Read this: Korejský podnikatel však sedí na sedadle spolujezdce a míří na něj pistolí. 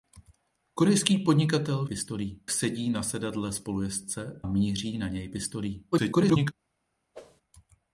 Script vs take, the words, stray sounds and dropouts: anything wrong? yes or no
yes